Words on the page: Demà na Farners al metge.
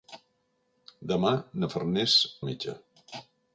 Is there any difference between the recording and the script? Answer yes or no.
no